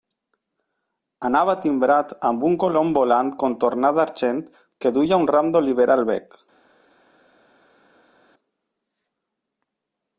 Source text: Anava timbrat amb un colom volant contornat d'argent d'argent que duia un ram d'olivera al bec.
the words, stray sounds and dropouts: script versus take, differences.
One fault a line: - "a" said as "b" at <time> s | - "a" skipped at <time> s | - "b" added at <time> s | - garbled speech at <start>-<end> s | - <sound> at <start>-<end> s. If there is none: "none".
- "d'argent" skipped at 4.4 s